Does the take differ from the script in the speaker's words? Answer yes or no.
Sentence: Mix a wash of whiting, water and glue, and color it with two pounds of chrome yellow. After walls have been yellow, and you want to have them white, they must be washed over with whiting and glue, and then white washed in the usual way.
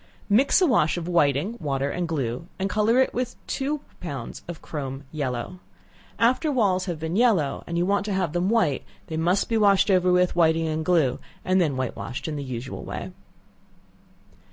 no